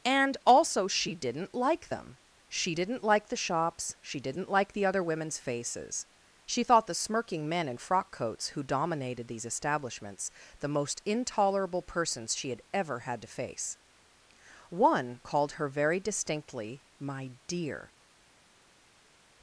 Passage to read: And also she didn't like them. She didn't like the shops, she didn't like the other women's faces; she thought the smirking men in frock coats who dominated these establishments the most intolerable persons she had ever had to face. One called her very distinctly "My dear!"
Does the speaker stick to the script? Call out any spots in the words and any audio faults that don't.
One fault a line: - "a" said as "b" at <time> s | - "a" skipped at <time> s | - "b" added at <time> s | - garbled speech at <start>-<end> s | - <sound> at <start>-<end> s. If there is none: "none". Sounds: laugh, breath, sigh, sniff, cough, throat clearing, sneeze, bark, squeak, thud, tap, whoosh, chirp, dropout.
none